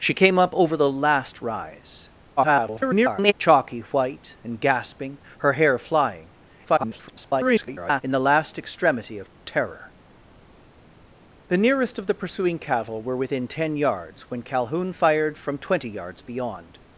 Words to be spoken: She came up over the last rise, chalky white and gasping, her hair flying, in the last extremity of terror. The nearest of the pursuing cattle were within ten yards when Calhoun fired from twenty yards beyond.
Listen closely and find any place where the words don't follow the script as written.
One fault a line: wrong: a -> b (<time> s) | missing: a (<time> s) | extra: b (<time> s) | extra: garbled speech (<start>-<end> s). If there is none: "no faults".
extra: garbled speech (2.4-3.3 s)
extra: garbled speech (6.6-8.0 s)